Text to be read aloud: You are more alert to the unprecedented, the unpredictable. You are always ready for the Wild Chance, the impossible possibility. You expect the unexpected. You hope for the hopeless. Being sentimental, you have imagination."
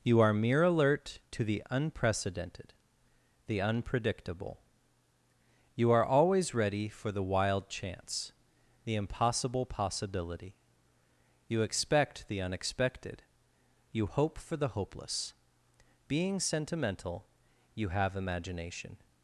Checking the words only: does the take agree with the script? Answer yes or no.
no